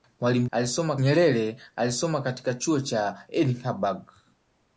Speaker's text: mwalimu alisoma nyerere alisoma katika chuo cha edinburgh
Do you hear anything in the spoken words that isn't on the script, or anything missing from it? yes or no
no